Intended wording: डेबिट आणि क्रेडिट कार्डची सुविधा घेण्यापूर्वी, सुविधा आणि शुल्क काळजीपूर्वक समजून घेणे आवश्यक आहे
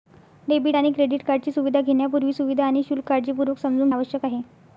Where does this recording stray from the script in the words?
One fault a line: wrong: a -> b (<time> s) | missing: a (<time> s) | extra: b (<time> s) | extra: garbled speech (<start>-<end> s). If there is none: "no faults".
missing: घेणे (3.9 s)